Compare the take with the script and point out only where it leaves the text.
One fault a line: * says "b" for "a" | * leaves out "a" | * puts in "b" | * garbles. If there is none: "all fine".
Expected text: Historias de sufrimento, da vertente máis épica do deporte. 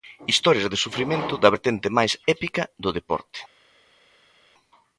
all fine